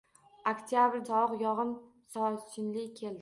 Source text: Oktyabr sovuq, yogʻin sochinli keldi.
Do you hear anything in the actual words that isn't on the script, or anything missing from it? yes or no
no